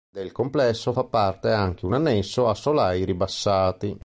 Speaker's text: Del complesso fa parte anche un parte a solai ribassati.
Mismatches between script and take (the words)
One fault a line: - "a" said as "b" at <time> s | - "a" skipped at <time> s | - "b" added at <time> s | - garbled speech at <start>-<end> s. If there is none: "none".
- "parte" said as "annesso" at 1.9 s